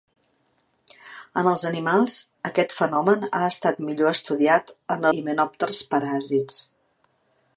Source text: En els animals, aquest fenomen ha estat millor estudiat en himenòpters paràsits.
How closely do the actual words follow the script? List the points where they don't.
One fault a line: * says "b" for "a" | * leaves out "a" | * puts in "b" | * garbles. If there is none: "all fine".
all fine